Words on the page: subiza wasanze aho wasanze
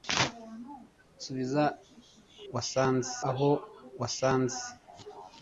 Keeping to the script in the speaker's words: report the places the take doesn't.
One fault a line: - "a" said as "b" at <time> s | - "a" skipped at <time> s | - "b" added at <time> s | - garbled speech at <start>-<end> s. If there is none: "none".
none